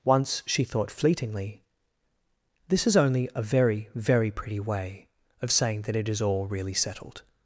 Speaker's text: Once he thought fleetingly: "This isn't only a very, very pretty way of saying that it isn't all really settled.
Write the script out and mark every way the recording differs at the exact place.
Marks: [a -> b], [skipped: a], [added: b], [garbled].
Once [he -> she] thought fleetingly: "This [isn't -> is] only a very, very pretty way of saying that it [isn't -> is] all really settled.